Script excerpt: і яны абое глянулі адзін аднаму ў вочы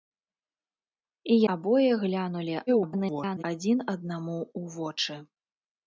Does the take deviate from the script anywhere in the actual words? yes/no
yes